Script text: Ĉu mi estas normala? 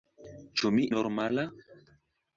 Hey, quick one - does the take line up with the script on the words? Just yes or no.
no